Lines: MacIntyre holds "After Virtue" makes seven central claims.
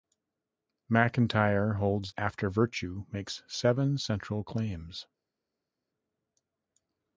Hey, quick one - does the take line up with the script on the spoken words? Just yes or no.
yes